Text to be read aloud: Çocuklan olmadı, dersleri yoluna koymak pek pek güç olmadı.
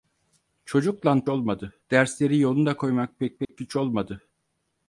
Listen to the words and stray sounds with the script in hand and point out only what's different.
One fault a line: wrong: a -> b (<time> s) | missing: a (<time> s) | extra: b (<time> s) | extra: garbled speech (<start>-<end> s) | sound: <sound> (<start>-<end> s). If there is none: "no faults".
sound: dropout (3.5-3.5 s)